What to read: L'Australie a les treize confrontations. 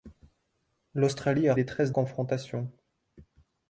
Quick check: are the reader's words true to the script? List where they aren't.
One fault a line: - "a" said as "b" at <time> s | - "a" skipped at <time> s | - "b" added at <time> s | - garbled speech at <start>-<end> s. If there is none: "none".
none